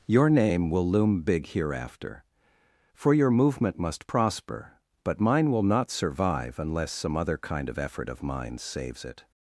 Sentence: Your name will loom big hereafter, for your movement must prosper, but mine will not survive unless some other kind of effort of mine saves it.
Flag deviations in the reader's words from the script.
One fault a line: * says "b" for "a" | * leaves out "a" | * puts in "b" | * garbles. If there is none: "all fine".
all fine